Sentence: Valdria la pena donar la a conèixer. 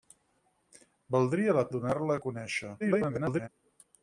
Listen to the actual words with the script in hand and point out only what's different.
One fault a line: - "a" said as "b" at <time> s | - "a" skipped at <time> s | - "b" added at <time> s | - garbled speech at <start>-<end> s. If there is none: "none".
- "pena" skipped at 1.6 s
- garbled speech at 2.8-3.5 s